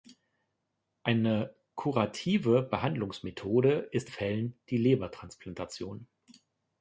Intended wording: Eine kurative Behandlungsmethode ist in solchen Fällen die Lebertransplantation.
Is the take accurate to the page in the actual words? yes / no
no